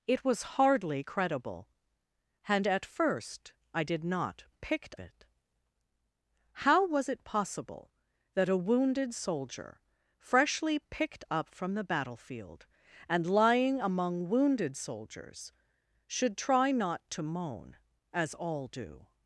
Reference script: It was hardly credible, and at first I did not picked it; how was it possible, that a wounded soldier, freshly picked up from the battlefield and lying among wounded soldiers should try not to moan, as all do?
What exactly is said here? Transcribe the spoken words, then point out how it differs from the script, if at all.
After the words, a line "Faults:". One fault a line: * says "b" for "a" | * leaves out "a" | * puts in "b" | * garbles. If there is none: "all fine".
It was hardly credible, and at first I did not picked it; how was it possible, that a wounded soldier, freshly picked up from the battlefield and lying among wounded soldiers should try not to moan, as all do?
Faults:
all fine